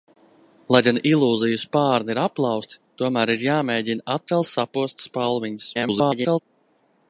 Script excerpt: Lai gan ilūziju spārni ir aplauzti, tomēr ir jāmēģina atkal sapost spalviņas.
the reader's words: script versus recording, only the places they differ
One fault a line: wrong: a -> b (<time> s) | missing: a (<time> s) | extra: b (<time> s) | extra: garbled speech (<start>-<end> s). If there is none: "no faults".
extra: garbled speech (5.7-6.4 s)